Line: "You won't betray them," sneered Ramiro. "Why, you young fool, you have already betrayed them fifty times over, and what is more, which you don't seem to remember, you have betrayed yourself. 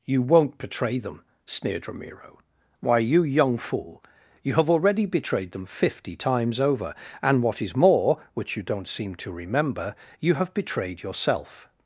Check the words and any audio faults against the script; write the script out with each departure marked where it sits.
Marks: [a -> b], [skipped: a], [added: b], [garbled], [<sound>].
"You won't betray them," sneered Ramiro. "Why, you young fool, you have already betrayed them fifty times over, and what is more, which you don't seem to remember, you have betrayed yourself.